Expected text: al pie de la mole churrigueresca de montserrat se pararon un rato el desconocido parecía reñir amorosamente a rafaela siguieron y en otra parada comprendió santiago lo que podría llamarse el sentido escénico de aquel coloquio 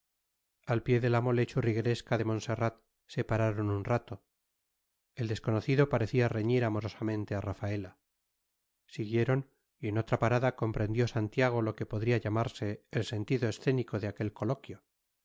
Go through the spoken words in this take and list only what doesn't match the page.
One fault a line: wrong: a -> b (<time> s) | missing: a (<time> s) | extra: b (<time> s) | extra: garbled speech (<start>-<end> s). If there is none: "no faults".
no faults